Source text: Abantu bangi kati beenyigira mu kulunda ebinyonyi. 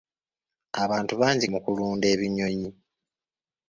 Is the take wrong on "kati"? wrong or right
wrong